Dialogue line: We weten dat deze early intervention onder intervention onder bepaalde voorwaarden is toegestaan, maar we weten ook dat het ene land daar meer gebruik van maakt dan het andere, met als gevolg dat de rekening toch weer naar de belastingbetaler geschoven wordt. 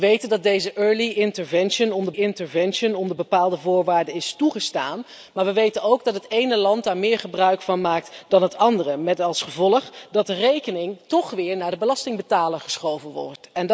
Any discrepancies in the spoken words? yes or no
no